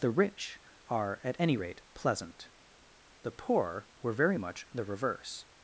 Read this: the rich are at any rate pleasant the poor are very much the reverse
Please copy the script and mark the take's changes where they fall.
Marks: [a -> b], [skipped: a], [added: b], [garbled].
the rich are at any rate pleasant the poor [are -> were] very much the reverse